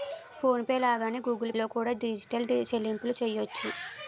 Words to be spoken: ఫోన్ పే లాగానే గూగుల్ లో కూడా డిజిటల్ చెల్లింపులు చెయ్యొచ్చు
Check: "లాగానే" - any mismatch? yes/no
no